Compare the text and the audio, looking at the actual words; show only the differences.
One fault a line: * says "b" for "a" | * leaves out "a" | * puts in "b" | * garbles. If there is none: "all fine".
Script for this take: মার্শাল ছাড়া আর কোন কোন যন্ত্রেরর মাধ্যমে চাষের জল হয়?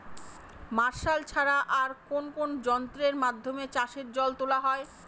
* puts in "তোলা"